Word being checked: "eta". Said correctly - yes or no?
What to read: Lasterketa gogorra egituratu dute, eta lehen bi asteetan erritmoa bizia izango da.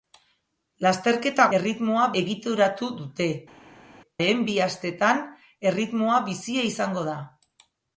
no